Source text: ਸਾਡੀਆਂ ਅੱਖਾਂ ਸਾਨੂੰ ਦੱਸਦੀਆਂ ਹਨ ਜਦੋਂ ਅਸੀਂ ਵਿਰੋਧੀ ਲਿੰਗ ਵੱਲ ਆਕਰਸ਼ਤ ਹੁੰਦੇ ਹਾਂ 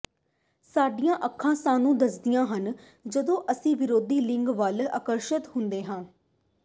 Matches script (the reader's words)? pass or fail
pass